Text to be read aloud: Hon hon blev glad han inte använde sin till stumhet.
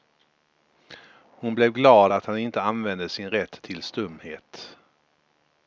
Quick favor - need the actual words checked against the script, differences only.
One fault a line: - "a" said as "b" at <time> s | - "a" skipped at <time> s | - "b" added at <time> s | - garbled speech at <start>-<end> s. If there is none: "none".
- "hon" skipped at 1.6 s
- "att" added at 2.1 s
- "rätt" added at 3.3 s